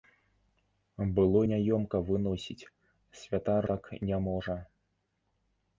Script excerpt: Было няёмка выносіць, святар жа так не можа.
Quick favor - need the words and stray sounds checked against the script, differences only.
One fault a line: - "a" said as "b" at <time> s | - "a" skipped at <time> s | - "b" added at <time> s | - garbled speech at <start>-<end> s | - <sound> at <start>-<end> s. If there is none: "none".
- "жа" skipped at 3.7 s